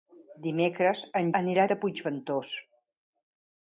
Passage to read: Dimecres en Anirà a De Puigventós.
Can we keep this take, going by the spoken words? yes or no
yes